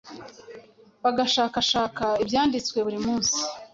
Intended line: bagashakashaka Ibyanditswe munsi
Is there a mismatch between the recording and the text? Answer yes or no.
yes